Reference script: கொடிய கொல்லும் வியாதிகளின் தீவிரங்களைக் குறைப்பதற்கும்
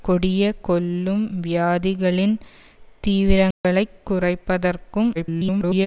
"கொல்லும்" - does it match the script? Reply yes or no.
yes